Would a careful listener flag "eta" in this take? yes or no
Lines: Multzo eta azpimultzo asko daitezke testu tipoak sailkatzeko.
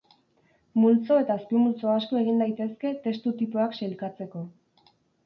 no